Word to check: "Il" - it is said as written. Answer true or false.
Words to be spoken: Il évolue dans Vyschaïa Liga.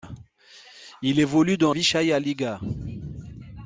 true